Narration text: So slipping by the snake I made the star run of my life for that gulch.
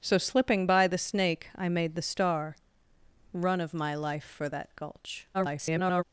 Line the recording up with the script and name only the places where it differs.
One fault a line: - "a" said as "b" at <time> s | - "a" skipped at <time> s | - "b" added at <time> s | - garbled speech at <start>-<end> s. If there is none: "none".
- garbled speech at 5.3-6.0 s